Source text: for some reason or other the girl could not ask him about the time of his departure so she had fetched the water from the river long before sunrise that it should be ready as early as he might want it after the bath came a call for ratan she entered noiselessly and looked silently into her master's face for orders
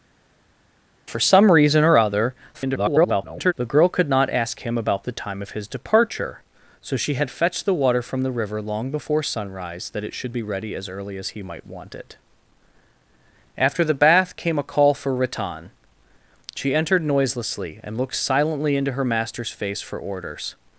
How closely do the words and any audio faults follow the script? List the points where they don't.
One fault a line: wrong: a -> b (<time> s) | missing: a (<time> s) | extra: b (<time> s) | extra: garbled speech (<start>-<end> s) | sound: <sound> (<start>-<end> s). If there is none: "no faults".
extra: garbled speech (2.5-3.5 s)